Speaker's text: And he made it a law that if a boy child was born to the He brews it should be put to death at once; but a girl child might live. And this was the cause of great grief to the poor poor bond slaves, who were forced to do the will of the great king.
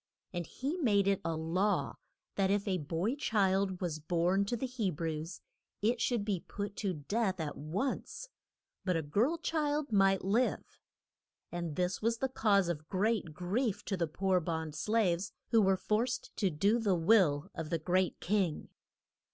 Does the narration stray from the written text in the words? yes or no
yes